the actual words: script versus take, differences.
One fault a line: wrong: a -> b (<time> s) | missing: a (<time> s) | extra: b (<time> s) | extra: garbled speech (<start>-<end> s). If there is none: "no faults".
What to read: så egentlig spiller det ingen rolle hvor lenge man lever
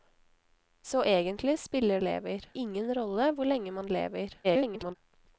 wrong: det -> lever (2.0 s)
extra: garbled speech (4.4-5.0 s)